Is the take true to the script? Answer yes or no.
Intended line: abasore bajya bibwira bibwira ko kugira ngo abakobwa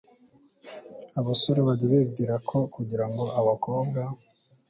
no